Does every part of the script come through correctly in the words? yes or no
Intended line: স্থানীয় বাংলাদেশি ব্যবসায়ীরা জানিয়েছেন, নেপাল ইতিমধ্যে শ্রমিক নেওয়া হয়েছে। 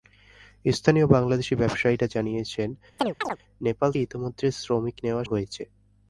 yes